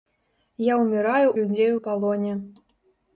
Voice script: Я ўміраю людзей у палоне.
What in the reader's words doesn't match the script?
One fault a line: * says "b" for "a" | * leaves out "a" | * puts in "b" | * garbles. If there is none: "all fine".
all fine